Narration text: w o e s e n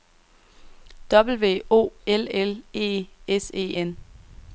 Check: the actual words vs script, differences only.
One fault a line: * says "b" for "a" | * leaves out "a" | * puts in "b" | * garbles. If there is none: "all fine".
* puts in "l l"